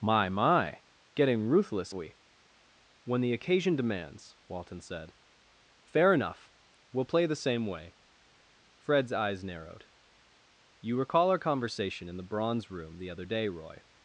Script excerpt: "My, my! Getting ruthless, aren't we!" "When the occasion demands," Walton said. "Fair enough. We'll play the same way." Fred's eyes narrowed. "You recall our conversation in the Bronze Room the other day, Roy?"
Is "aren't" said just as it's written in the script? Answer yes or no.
no